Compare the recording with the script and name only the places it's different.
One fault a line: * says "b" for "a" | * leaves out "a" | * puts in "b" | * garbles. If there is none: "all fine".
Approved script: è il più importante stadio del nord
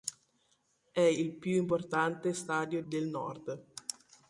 all fine